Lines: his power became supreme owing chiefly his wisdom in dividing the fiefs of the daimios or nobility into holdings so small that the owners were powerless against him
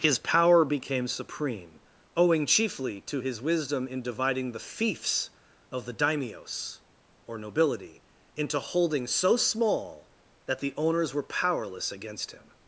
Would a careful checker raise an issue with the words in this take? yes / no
yes